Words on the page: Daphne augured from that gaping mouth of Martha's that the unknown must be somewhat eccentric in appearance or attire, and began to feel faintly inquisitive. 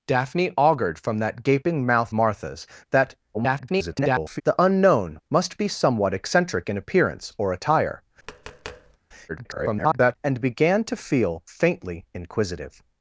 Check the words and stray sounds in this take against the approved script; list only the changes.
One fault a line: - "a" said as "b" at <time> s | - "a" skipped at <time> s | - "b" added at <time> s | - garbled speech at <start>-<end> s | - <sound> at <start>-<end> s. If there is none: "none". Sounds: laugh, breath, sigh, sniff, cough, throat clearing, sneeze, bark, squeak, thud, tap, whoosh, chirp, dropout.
- "of" skipped at 2.1 s
- garbled speech at 3.3-4.4 s
- tap at 8.2-9.0 s
- garbled speech at 9.3-10.2 s